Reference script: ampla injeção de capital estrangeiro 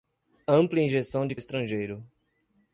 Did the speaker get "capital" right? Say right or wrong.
wrong